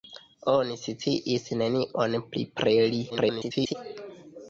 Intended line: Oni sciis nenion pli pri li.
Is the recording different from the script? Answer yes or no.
yes